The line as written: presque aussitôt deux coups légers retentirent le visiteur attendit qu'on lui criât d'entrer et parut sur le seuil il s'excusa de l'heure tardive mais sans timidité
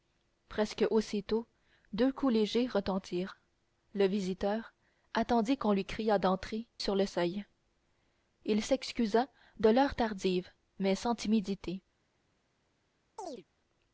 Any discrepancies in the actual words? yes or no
yes